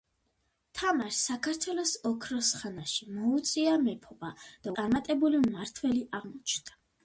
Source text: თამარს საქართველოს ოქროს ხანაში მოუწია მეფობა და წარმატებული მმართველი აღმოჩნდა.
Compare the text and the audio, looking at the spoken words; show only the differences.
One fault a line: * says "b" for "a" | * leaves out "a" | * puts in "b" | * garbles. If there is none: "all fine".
all fine